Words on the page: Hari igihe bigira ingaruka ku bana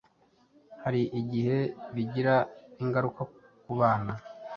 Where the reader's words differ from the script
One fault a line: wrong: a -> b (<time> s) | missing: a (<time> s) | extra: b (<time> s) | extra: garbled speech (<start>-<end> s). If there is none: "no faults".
no faults